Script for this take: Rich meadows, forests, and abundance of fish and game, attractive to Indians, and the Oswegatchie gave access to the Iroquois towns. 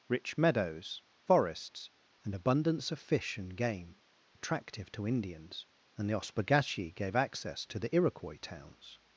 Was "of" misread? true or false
false